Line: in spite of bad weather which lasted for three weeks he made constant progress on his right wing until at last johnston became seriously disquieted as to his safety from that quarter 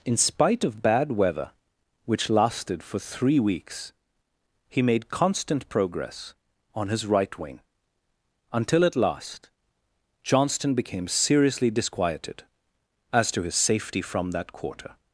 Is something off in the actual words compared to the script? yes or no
no